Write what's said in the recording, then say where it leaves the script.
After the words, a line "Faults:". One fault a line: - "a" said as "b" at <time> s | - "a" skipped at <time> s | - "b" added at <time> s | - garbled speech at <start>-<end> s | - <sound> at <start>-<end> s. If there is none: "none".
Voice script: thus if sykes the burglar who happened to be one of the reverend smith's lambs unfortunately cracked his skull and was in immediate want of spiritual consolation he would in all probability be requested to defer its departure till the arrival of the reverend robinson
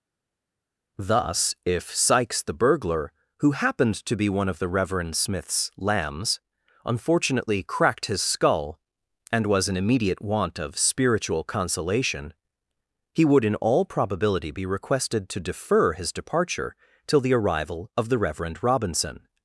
thus if sykes the burglar who happened to be one of the reverend smith's lambs unfortunately cracked his skull and was in immediate want of spiritual consolation he would in all probability be requested to defer his departure till the arrival of the reverend robinson
Faults:
- "its" said as "his" at 15.9 s